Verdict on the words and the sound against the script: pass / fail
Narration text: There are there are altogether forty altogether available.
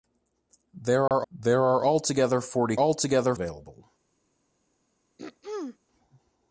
fail